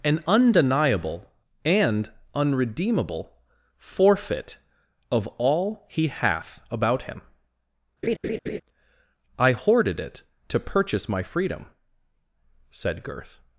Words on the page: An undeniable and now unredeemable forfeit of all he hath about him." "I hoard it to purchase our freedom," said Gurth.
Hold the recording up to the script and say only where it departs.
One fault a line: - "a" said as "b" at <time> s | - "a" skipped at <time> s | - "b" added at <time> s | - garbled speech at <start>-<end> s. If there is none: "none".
- "now" skipped at 2.1 s
- "hoard" said as "hoarded" at 9.5 s
- "our" said as "my" at 11.1 s